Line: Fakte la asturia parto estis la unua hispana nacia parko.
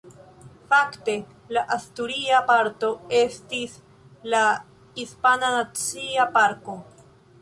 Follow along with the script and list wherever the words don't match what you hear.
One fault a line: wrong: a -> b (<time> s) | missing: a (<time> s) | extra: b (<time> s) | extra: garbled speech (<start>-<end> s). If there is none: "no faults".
missing: unua (4.4 s)